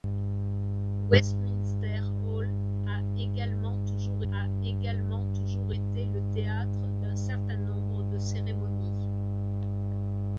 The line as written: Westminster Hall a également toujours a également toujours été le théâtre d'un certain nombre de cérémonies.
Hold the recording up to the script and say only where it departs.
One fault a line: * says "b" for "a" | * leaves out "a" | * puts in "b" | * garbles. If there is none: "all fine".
all fine